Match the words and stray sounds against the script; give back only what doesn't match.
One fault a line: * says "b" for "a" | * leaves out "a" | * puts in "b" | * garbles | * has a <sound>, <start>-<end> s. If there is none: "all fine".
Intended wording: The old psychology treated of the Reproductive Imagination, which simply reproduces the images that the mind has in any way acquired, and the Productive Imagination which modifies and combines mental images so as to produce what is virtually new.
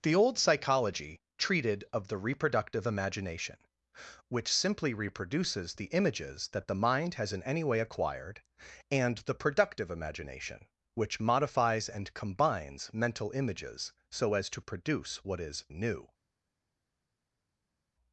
* leaves out "virtually"